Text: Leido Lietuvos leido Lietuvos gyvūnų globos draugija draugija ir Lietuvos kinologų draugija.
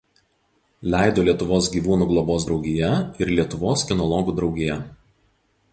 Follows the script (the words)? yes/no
no